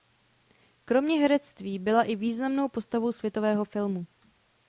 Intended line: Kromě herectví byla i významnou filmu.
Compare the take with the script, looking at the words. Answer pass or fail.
fail